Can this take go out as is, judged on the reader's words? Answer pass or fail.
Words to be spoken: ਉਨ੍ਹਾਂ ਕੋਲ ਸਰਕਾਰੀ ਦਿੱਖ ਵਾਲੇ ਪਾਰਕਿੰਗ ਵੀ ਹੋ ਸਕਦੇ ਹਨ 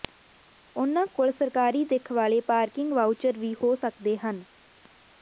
fail